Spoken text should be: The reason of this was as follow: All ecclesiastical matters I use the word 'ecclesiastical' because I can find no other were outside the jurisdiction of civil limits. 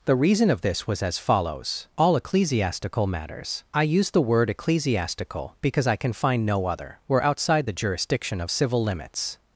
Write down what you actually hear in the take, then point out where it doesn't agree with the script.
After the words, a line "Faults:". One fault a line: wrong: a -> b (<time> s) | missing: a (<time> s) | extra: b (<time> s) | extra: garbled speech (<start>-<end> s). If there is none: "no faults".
The reason of this was as follows: All ecclesiastical matters I use the word 'ecclesiastical' because I can find no other were outside the jurisdiction of civil limits.
Faults:
wrong: follow -> follows (1.2 s)